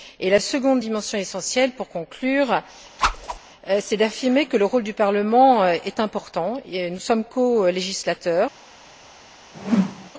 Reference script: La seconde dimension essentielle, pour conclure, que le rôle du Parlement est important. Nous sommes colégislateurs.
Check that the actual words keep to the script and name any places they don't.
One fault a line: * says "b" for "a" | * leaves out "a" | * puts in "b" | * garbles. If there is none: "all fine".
* puts in "c'est d'affirmer"